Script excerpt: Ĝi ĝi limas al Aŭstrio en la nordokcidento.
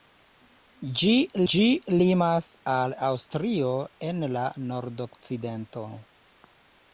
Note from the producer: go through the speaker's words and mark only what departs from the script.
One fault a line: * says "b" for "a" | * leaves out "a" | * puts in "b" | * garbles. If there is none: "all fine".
all fine